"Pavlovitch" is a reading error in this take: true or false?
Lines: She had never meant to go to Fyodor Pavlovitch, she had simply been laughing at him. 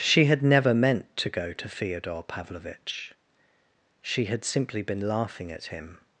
false